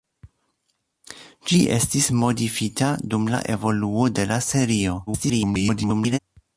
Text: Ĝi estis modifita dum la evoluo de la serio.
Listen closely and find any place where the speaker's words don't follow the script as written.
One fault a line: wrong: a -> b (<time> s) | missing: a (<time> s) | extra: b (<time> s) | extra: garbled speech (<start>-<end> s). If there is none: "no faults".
extra: garbled speech (5.1-6.2 s)